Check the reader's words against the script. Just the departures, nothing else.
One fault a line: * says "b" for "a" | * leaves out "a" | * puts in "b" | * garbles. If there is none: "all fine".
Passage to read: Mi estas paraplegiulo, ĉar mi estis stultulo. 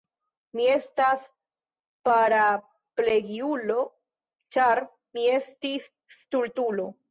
all fine